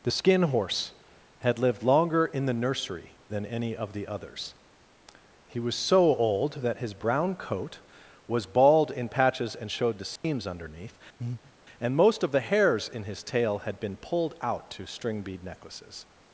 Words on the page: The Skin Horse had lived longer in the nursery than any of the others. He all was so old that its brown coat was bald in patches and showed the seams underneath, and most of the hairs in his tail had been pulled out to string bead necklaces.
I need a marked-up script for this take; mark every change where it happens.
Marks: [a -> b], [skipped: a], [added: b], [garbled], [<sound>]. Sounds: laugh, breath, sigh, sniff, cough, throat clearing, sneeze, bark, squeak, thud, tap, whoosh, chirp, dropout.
The Skin Horse had lived longer in the nursery than any of the others. He [skipped: all] was so old that [its -> his] brown coat was bald in patches and showed the seams [dropout] underneath, [breath] and most of the hairs in his tail had been pulled out to string bead necklaces.